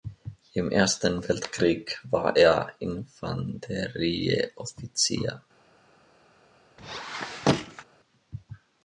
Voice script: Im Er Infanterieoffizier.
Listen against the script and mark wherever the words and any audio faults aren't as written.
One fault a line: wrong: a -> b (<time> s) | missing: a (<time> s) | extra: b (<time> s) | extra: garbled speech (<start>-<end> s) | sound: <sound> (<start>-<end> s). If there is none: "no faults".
extra: Ersten Weltkrieg war (0.7 s)
sound: squeak (6.8-7.8 s)